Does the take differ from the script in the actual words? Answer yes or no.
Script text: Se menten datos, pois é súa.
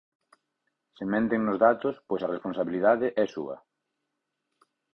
yes